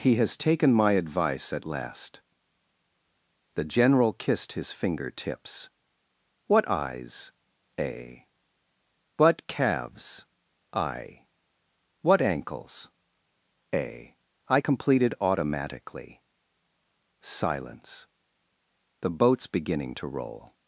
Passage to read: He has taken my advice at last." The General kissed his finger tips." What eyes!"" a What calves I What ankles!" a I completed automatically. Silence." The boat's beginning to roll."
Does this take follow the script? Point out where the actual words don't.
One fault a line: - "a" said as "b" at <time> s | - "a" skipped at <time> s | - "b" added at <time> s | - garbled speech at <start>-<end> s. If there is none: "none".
none